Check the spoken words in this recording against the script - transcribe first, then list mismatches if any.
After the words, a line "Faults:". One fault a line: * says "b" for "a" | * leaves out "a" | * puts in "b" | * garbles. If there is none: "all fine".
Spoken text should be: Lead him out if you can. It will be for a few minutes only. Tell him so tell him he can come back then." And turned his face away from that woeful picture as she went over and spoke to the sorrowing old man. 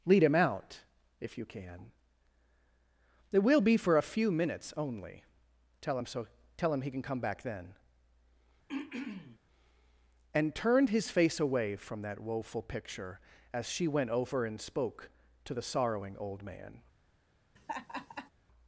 Lead him out if you can. It will be for a few minutes only. Tell him so tell him he can come back then." And turned his face away from that woeful picture as she went over and spoke to the sorrowing old man.
Faults:
all fine